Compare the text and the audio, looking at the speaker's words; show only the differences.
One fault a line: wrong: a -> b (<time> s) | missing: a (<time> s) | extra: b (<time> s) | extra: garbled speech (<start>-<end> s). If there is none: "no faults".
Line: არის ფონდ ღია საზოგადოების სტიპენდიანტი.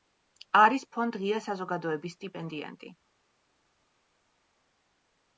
no faults